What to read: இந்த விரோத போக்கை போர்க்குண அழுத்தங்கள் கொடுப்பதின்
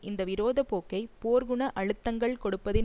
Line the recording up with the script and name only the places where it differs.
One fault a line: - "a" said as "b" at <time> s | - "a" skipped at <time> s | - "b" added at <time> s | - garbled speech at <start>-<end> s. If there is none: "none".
none